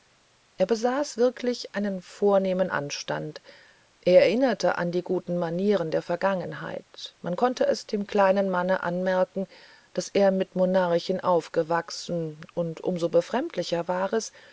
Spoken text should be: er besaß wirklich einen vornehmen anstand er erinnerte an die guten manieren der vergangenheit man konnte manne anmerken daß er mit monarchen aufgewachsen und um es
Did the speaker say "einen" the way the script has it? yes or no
yes